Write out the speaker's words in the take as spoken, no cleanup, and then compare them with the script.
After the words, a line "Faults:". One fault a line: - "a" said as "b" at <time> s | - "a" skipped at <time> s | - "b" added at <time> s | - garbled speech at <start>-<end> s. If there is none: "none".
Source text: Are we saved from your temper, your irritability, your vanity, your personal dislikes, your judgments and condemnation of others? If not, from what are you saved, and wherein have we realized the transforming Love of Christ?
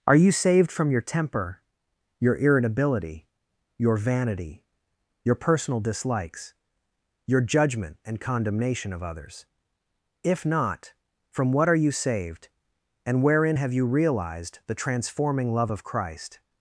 Are you saved from your temper, your irritability, your vanity, your personal dislikes, your judgment and condemnation of others? If not, from what are you saved, and wherein have you realized the transforming Love of Christ?
Faults:
- "we" said as "you" at 0.1 s
- "judgments" said as "judgment" at 7.4 s
- "we" said as "you" at 13.7 s